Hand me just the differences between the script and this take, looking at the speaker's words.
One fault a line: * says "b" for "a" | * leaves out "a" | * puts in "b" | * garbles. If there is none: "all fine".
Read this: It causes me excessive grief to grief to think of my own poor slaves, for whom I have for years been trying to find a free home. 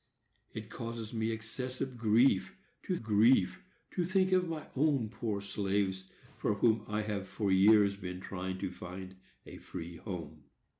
all fine